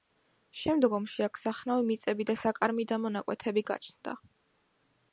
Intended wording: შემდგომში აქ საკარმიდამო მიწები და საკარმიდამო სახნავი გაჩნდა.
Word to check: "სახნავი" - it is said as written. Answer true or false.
false